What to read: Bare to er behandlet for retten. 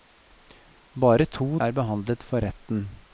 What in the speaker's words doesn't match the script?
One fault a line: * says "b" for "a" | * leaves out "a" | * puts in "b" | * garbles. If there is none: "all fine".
all fine